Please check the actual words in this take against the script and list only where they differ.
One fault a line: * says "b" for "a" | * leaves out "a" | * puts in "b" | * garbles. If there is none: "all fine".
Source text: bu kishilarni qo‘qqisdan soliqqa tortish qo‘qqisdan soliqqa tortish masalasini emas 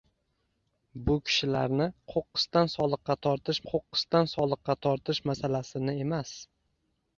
all fine